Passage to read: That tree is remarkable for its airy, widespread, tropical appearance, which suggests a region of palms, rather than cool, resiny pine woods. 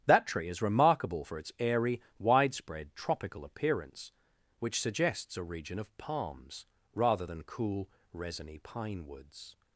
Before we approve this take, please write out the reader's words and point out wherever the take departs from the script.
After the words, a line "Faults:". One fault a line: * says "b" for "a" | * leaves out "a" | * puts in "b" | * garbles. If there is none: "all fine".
That tree is remarkable for its airy, widespread, tropical appearance, which suggests a region of palms, rather than cool, resiny pine woods.
Faults:
all fine